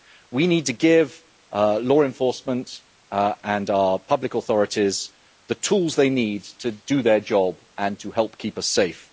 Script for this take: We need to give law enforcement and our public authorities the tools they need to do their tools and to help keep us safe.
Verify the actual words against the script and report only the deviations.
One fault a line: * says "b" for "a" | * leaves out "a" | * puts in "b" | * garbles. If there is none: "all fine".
* says "job" for "tools"